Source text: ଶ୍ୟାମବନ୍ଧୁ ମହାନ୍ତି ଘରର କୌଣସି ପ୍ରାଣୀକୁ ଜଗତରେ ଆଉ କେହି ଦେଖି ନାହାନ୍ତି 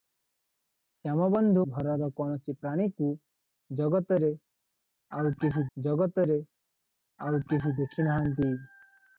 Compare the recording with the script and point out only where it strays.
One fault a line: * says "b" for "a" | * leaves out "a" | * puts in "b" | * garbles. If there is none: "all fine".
* leaves out "ମହାନ୍ତି"
* puts in "ଜଗତରେ ଆଉ କେହି"